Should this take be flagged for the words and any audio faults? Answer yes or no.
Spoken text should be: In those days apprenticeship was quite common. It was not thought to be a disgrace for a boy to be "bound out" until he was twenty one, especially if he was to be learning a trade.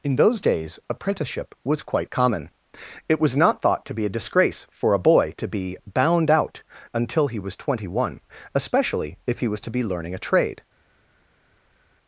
no